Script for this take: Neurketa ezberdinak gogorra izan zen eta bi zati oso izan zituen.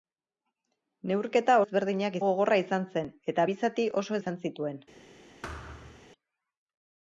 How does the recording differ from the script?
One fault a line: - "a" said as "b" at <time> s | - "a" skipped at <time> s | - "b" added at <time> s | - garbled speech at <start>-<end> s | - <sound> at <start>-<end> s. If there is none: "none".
- thud at 5.4-6.1 s